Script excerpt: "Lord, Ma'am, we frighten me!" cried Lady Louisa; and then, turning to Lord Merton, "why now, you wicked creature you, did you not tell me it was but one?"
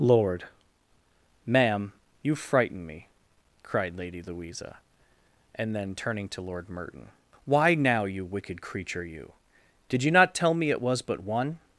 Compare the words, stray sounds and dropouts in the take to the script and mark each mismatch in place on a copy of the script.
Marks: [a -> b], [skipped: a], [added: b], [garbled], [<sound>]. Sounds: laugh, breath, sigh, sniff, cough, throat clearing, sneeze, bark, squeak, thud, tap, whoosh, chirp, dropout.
"Lord, Ma'am, [we -> you] frighten me!" cried Lady Louisa; and then, turning to Lord Merton, "why now, you wicked creature you, did you not tell me it was but one?"